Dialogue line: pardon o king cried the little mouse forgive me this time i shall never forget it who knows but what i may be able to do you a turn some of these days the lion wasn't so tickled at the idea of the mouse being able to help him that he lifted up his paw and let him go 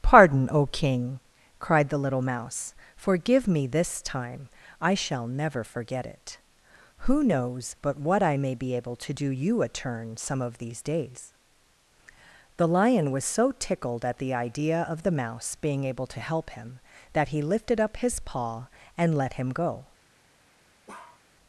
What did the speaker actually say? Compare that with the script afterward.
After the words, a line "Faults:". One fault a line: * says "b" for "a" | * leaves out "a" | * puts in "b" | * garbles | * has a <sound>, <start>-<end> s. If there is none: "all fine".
pardon o king cried the little mouse forgive me this time i shall never forget it who knows but what i may be able to do you a turn some of these days the lion was so tickled at the idea of the mouse being able to help him that he lifted up his paw and let him go
Faults:
* says "was" for "wasn't"
* has a bark, 20.9-21.2 s